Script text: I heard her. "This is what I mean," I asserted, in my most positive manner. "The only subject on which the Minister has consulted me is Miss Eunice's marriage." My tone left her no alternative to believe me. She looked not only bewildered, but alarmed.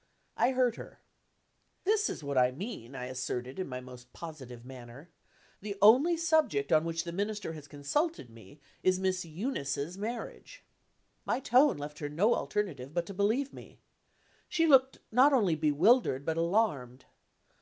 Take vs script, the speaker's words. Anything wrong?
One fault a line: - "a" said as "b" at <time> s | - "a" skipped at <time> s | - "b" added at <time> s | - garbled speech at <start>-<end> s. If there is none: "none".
- "but" added at 12.9 s